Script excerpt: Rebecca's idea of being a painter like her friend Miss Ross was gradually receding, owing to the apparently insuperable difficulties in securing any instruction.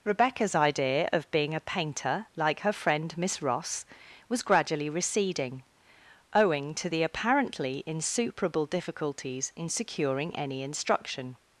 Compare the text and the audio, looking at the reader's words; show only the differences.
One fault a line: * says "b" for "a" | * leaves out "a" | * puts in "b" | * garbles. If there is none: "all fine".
all fine